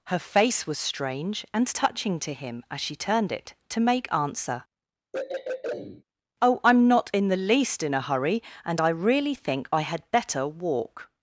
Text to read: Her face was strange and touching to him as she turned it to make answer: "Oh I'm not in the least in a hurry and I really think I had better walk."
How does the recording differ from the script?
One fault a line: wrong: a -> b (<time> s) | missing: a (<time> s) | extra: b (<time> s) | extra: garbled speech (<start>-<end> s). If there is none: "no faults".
no faults